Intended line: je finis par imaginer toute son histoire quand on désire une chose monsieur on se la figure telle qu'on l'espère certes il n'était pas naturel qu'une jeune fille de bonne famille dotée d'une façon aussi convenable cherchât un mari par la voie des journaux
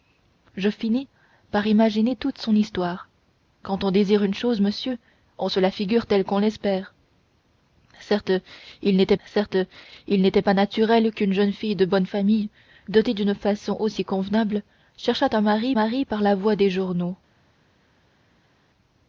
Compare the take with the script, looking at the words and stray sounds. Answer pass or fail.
fail